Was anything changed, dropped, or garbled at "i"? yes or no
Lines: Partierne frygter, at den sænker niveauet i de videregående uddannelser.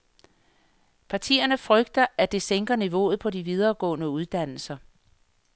yes